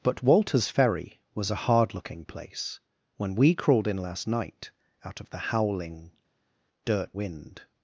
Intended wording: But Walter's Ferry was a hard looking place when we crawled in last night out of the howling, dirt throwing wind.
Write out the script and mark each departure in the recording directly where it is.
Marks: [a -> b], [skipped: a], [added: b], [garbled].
But Walter's Ferry was a hard looking place when we crawled in last night out of the howling, dirt [skipped: throwing] wind.